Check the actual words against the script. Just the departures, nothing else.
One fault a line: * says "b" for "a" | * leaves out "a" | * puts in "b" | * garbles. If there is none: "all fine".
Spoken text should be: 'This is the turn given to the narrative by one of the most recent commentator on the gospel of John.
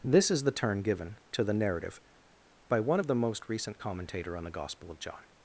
all fine